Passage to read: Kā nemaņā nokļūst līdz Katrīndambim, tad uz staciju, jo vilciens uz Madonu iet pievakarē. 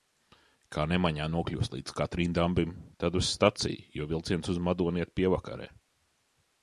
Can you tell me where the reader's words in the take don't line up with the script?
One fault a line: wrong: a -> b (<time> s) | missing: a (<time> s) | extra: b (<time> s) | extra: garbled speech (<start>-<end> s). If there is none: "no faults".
no faults